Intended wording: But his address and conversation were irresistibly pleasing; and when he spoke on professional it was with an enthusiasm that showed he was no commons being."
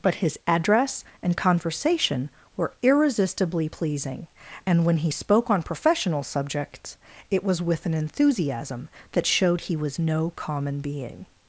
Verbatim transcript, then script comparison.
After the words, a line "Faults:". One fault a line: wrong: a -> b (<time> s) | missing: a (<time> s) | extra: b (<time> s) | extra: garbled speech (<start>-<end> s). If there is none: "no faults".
But his address and conversation were irresistibly pleasing; and when he spoke on professional subjects, it was with an enthusiasm that showed he was no common being."
Faults:
extra: subjects (6.2 s)
wrong: commons -> common (10.4 s)